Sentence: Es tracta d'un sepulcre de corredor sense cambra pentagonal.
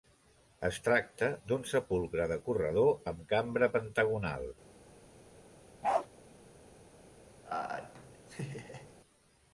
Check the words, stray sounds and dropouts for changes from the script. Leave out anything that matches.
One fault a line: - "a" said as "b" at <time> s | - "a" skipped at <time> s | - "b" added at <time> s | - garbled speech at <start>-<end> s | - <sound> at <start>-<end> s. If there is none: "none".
- "sense" said as "amb" at 3.1 s
- bark at 5.8-6.1 s
- laugh at 7.4-8.9 s